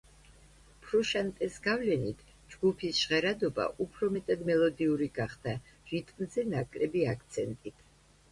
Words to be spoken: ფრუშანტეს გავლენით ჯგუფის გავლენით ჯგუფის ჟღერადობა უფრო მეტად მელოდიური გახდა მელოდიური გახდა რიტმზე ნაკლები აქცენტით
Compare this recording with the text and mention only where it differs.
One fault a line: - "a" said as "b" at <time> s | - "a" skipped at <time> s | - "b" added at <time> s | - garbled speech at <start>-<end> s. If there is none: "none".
- "გავლენით ჯგუფის" skipped at 3.0 s
- "მელოდიური გახდა" skipped at 5.6 s